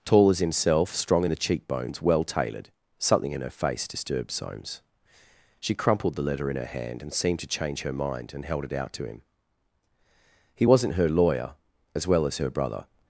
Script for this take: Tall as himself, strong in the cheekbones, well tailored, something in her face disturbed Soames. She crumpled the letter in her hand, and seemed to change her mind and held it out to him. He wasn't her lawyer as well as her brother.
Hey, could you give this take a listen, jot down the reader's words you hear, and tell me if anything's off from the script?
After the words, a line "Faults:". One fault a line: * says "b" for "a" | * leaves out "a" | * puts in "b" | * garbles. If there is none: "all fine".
Tall as himself, strong in the cheekbones, well tailored, something in her face disturbed Soames. She crumpled the letter in her hand, and seemed to change her mind and held it out to him. He wasn't her lawyer as well as her brother.
Faults:
all fine